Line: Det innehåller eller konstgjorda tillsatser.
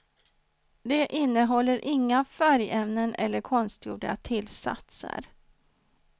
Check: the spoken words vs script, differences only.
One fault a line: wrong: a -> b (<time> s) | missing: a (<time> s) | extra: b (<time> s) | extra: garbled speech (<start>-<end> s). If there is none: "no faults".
extra: inga färgämnen (1.9 s)